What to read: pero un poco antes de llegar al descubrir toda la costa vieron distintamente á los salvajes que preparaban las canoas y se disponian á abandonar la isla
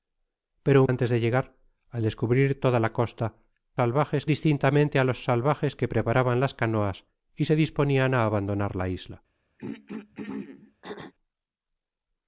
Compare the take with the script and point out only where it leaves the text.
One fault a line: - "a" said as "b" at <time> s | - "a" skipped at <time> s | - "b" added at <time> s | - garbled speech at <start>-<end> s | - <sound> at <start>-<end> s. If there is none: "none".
- "poco" skipped at 0.9 s
- "vieron" said as "salvajes" at 3.8 s
- throat clearing at 9.6-11.1 s